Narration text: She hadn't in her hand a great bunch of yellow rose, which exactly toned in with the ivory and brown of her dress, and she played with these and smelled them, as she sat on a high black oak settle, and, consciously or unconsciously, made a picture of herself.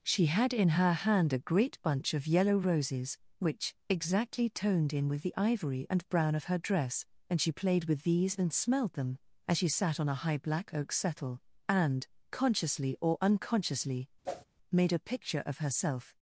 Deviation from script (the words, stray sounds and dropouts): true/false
true